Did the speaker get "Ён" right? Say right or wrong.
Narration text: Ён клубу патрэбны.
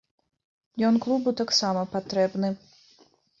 right